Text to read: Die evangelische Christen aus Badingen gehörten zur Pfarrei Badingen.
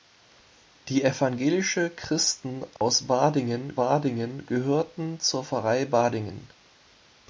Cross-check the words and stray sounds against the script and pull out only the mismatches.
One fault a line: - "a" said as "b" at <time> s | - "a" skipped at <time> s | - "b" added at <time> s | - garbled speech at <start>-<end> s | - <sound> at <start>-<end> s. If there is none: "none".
- dropout at 2.8-2.8 s
- "Badingen" added at 3.7 s